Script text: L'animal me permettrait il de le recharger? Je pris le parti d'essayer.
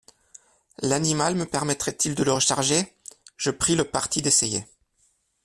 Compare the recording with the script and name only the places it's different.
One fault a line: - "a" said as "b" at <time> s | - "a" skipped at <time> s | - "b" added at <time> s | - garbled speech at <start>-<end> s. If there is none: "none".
none